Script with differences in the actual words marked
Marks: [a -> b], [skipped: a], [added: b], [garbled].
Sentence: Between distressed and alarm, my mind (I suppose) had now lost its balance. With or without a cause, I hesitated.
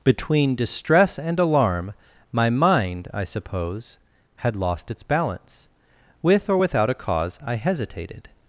Between [distressed -> distress] and alarm, my mind (I suppose) had [skipped: now] lost its balance. With or without a cause, I hesitated.